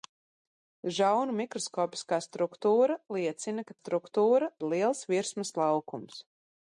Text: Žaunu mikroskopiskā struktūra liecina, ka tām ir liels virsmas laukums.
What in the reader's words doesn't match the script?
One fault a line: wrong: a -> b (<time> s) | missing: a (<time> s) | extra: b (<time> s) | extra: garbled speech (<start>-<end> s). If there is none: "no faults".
wrong: tām -> struktūra (3.8 s)